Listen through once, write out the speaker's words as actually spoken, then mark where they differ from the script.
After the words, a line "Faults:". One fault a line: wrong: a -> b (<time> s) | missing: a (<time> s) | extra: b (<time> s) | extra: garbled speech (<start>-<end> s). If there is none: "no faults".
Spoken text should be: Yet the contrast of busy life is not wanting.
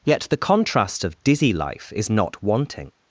Yet the contrast of dizzy life is not wanting.
Faults:
wrong: busy -> dizzy (1.2 s)